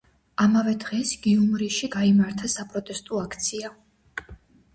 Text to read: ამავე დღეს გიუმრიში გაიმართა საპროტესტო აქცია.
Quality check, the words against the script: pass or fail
pass